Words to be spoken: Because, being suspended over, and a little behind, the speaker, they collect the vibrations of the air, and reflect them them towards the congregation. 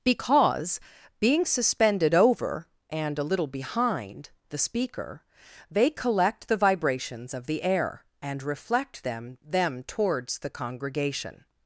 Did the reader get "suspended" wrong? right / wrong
right